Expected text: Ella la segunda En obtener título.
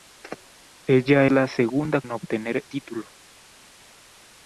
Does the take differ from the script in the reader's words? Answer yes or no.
no